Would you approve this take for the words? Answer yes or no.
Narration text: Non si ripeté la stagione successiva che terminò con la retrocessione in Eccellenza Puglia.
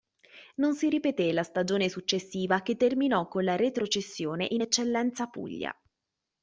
yes